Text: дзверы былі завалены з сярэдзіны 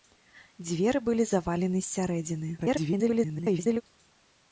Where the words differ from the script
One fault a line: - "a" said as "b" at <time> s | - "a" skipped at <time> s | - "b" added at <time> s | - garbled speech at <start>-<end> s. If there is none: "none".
- garbled speech at 2.6-3.8 s